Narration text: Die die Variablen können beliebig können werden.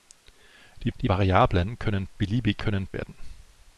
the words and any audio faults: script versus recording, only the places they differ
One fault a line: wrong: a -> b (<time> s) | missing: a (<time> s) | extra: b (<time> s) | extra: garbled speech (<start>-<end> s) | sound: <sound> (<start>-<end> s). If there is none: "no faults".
no faults